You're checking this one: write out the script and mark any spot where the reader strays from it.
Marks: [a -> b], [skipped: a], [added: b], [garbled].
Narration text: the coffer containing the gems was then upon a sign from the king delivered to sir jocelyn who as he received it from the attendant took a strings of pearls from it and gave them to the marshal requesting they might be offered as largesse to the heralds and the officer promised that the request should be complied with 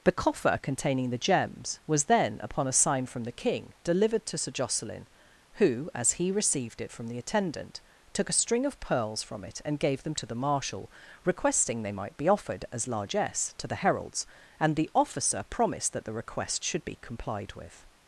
the coffer containing the gems was then upon a sign from the king delivered to sir jocelyn who as he received it from the attendant took a [strings -> string] of pearls from it and gave them to the marshal requesting they might be offered as largesse to the heralds and the officer promised that the request should be complied with